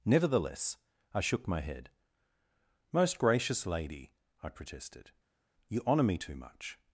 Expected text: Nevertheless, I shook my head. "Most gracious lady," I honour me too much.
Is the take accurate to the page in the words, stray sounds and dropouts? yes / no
no